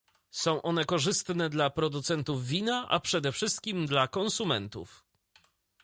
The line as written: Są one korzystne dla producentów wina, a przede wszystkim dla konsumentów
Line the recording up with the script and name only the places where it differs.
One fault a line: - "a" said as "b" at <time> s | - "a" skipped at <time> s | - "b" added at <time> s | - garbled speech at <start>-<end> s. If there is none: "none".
none